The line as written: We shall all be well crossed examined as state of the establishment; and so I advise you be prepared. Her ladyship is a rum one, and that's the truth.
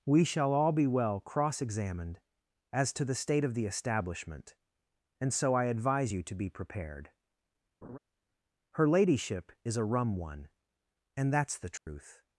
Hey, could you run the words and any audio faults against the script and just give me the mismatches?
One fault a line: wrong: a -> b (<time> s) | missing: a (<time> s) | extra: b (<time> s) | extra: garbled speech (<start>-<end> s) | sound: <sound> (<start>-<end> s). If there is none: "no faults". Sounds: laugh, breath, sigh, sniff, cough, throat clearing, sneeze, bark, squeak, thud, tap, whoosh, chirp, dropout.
wrong: crossed -> cross (1.2 s)
extra: to the (2.9 s)
extra: to (6.2 s)
sound: laugh (7.8-8.0 s)
sound: dropout (11.8-11.9 s)